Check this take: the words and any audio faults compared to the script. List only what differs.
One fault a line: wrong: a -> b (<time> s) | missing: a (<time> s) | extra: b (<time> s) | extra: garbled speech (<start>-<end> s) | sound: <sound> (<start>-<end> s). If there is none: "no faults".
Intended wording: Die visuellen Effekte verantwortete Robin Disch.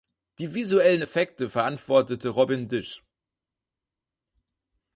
no faults